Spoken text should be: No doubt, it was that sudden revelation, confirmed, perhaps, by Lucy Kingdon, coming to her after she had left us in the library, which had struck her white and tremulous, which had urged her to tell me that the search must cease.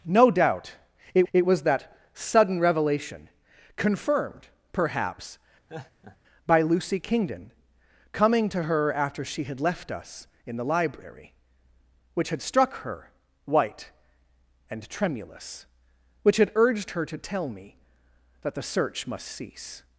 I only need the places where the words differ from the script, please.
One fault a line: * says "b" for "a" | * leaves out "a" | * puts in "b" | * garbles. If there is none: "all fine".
* puts in "it"